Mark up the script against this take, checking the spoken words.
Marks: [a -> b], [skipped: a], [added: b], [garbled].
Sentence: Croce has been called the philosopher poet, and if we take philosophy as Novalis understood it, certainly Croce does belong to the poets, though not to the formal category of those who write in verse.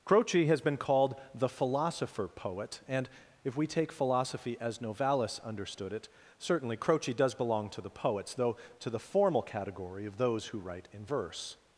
Croce has been called the philosopher poet, and if we take philosophy as Novalis understood it, certainly Croce does belong to the poets, though [skipped: not] to the formal category of those who write in verse.